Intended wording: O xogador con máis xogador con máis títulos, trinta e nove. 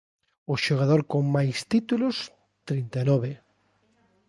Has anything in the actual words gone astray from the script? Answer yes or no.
yes